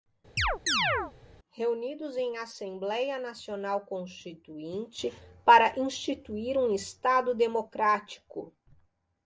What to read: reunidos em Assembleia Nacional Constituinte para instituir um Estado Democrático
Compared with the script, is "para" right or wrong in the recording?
right